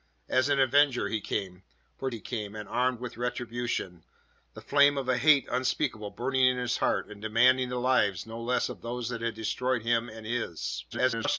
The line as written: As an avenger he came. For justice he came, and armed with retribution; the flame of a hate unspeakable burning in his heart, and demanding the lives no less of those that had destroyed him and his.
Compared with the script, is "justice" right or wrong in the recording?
wrong